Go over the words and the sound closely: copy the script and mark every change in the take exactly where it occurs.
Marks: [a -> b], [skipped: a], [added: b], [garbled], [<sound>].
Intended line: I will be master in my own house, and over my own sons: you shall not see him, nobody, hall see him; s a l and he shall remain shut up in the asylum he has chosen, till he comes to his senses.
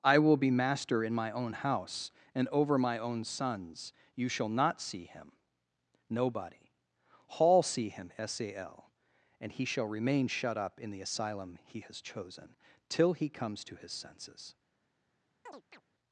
I will be master in my own house, and over my own sons: you shall not see him, nobody, hall see him; s a l and he shall remain shut up in the asylum he has chosen, till he comes to his senses. [chirp]